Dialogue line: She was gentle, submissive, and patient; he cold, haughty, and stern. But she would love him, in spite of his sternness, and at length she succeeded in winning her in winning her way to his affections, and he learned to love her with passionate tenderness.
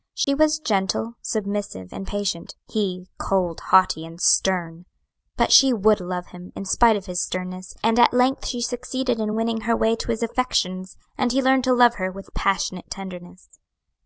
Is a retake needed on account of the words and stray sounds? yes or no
yes